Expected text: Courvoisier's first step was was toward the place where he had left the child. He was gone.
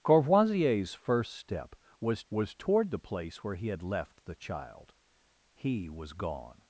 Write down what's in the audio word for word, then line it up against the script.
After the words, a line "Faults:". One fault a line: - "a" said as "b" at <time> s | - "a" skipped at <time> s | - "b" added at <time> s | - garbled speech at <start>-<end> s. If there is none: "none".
Courvoisier's first step was was toward the place where he had left the child. He was gone.
Faults:
none